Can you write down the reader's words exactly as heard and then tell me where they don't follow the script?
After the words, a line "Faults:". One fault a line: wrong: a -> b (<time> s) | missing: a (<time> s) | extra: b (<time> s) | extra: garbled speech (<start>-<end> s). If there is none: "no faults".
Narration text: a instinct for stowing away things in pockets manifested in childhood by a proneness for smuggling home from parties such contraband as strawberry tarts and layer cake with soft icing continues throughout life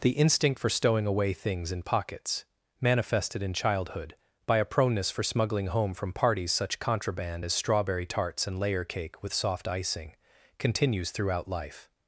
the instinct for stowing away things in pockets manifested in childhood by a proneness for smuggling home from parties such contraband as strawberry tarts and layer cake with soft icing continues throughout life
Faults:
wrong: a -> the (0.0 s)